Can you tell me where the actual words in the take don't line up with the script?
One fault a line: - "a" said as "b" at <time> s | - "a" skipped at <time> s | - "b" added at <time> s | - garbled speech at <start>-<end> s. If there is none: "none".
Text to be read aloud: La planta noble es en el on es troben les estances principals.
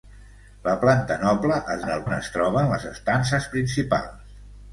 none